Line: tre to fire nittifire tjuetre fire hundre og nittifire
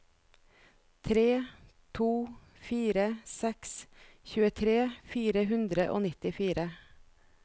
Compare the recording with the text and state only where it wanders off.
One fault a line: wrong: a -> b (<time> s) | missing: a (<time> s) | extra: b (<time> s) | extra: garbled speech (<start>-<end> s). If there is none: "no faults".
wrong: nittifire -> seks (3.3 s)